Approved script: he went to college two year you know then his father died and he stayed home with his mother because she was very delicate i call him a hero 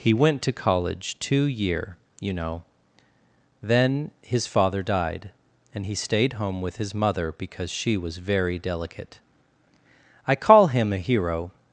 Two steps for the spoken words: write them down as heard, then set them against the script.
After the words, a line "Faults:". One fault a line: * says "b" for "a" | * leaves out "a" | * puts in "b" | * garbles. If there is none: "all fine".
he went to college two year you know then his father died and he stayed home with his mother because she was very delicate i call him a hero
Faults:
all fine